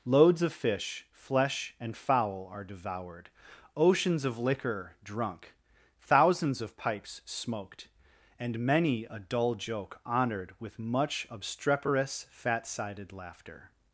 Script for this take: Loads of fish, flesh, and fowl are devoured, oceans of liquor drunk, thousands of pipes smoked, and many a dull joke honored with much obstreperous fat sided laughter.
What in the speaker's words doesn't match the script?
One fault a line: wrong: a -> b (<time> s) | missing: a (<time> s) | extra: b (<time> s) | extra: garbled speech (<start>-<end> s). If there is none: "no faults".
no faults